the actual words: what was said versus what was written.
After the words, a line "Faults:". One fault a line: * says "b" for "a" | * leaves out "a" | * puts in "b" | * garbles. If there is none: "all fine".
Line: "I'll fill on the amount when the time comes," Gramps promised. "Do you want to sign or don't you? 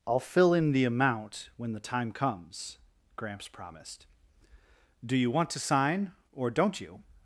"I'll fill in the amount when the time comes," Gramps promised. "Do you want to sign or don't you?
Faults:
* says "in" for "on"